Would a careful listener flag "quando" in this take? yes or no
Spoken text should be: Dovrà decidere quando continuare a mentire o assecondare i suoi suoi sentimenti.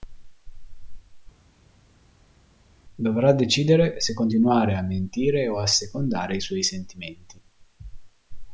yes